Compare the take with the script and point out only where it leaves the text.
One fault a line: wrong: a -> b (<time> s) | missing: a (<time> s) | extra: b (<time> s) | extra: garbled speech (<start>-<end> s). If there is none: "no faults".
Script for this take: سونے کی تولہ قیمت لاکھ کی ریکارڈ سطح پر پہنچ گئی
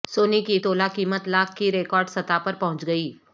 no faults